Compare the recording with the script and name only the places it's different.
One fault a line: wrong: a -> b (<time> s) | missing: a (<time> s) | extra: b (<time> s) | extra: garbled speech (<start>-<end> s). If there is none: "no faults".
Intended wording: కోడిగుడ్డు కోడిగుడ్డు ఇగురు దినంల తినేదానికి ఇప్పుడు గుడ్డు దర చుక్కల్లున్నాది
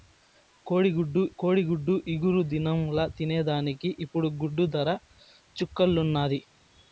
no faults